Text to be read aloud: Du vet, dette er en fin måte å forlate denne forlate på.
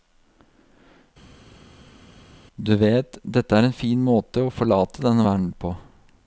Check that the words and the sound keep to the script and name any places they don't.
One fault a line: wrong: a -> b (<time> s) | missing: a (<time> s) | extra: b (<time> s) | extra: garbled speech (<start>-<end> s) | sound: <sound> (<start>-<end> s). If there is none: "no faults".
wrong: forlate -> verden (5.3 s)